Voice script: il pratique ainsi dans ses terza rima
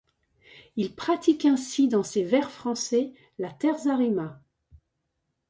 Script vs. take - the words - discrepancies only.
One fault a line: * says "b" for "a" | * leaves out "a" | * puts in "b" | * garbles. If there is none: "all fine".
* puts in "vers français la"